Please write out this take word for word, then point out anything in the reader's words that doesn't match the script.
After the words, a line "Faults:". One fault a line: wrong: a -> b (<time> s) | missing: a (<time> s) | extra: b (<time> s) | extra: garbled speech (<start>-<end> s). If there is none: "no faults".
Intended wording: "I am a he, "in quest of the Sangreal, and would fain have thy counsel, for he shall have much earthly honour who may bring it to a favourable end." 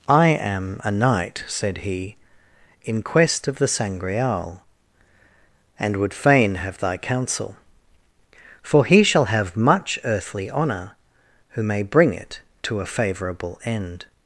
"I am a knight," said he, "in quest of the Sangreal, and would fain have thy counsel, for he shall have much earthly honour who may bring it to a favourable end."
Faults:
extra: knight said (0.9 s)